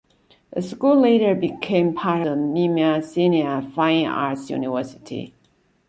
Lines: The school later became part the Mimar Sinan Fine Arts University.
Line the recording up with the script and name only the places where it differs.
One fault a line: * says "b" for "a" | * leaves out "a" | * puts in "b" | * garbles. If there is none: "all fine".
all fine